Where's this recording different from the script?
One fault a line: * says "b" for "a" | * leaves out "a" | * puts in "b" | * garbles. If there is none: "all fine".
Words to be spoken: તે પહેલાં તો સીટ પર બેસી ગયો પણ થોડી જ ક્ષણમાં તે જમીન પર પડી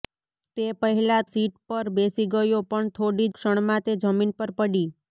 * leaves out "તો"
* leaves out "જ"